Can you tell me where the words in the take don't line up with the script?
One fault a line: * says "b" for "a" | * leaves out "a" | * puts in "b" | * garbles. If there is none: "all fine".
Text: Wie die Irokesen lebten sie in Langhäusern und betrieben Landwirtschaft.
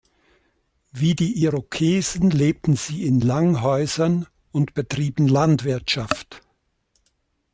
all fine